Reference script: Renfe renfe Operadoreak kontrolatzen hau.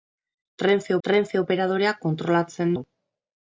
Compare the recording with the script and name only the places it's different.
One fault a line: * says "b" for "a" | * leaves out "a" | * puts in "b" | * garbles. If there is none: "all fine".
all fine